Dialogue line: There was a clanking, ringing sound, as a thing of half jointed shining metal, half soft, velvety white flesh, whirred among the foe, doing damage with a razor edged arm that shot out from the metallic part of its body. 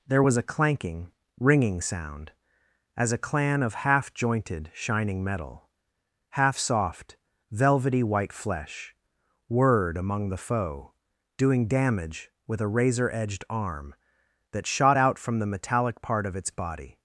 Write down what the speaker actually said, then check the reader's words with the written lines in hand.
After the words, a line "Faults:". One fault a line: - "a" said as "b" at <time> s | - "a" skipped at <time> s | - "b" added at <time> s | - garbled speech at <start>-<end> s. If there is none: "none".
There was a clanking, ringing sound, as a clan of half jointed shining metal, half soft, velvety white flesh, whirred among the foe, doing damage with a razor edged arm that shot out from the metallic part of its body.
Faults:
- "thing" said as "clan" at 3.2 s